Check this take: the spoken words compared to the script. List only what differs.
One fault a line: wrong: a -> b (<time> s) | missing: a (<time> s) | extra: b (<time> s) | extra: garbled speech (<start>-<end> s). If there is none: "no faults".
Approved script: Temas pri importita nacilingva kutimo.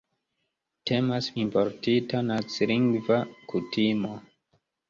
missing: pri (1.3 s)